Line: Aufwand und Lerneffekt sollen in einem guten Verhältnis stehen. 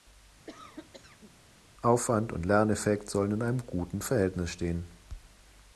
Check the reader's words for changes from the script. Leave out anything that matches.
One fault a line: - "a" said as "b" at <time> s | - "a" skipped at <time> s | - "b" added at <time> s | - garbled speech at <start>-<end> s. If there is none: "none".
none